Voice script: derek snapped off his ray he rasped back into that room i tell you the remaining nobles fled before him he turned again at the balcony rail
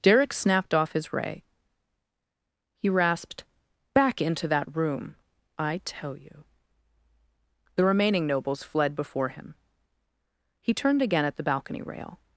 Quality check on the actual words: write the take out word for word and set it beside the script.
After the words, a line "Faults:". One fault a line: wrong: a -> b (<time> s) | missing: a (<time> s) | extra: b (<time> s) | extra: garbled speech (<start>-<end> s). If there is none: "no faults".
derek snapped off his ray he rasped back into that room i tell you the remaining nobles fled before him he turned again at the balcony rail
Faults:
no faults